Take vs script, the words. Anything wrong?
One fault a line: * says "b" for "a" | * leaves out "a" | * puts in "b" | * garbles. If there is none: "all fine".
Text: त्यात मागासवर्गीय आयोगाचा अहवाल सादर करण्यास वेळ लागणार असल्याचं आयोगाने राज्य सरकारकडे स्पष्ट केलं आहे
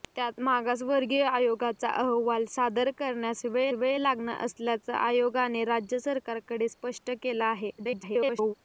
* puts in "वेळ"
* garbles